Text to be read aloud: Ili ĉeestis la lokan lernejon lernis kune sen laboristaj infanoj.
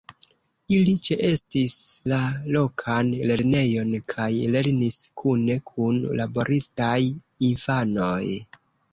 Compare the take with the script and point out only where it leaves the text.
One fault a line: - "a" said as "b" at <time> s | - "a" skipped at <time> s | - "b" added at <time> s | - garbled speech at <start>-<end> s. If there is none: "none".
- "kaj" added at 4.1 s
- "sen" said as "kun" at 5.7 s